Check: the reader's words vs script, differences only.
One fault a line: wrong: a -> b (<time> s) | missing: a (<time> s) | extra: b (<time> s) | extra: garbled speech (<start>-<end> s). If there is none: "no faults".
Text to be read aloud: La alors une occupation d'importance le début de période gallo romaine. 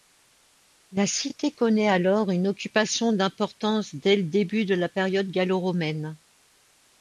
extra: cité connaît (1.1 s)
extra: dès (3.9 s)
extra: la (4.7 s)